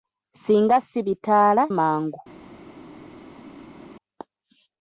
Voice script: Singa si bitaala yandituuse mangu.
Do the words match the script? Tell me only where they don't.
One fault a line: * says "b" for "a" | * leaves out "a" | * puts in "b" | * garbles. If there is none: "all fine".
* leaves out "yandituuse"